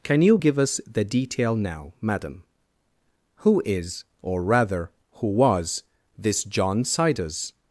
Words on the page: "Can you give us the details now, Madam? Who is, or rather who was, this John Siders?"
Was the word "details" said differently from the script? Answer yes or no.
yes